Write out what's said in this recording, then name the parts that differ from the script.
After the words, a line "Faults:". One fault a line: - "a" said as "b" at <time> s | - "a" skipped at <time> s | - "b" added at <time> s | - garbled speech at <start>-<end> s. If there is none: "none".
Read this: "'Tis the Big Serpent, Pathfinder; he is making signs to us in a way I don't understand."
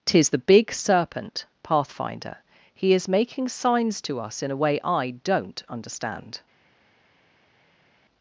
"'Tis the Big Serpent, Pathfinder; he is making signs to us in a way I don't understand."
Faults:
none